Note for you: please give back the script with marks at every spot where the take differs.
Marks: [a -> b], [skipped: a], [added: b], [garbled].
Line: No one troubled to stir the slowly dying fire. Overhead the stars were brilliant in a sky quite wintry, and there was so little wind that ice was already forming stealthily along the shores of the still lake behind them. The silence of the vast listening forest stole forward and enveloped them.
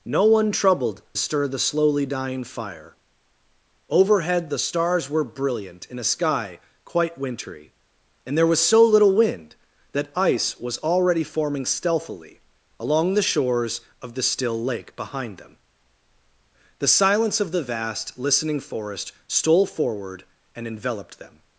No one troubled [skipped: to] stir the slowly dying fire. Overhead the stars were brilliant in a sky quite wintry, and there was so little wind that ice was already forming stealthily along the shores of the still lake behind them. The silence of the vast listening forest stole forward and enveloped them.